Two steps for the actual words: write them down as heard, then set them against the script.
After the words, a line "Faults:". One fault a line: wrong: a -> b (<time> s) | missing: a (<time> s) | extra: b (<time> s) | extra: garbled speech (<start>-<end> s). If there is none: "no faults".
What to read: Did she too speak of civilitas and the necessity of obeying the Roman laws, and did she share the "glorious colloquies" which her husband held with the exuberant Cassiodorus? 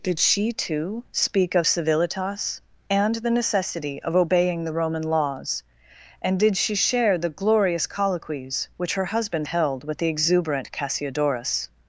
Did she too speak of civilitas and the necessity of obeying the Roman laws, and did she share the "glorious colloquies" which her husband held with the exuberant Cassiodorus?
Faults:
no faults